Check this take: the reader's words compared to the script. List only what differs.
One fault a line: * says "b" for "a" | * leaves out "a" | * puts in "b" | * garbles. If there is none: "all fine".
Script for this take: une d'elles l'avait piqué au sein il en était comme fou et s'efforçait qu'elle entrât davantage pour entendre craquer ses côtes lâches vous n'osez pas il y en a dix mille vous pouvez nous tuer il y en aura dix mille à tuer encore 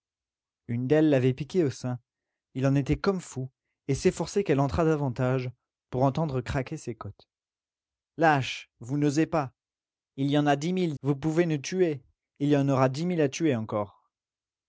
all fine